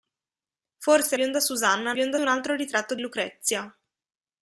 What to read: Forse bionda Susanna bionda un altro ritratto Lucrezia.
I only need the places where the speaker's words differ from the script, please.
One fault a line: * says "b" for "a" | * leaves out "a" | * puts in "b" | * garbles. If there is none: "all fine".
all fine